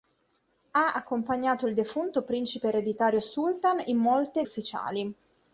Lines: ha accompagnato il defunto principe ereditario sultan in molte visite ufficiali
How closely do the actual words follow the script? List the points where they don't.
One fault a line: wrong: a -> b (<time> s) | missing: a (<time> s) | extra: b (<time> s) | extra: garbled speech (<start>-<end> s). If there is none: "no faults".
missing: visite (4.5 s)